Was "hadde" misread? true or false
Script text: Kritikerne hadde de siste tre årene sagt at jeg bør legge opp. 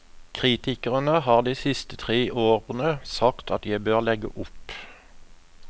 true